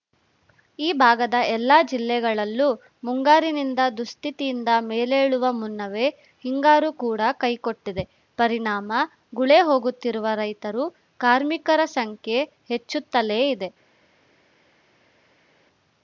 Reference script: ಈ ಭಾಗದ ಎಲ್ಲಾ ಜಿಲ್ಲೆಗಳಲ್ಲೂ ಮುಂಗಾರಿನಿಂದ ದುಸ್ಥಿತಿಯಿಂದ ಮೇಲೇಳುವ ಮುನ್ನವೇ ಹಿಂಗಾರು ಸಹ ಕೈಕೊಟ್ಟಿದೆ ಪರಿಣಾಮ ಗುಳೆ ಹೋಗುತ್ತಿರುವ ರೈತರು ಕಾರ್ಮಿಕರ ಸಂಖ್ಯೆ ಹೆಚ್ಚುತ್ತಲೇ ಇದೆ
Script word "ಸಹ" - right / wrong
wrong